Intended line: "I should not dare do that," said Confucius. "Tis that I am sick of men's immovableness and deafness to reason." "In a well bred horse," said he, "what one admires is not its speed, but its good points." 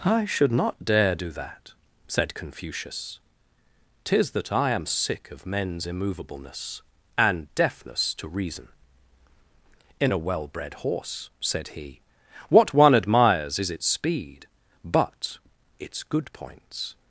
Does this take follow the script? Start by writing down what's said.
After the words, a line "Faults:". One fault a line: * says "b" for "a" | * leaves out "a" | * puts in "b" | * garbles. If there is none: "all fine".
"I should not dare do that," said Confucius. "Tis that I am sick of men's immovableness and deafness to reason." "In a well bred horse," said he, "what one admires is its speed, but its good points."
Faults:
* leaves out "not"